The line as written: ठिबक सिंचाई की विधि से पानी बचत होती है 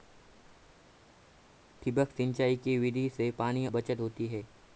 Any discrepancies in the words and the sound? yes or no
no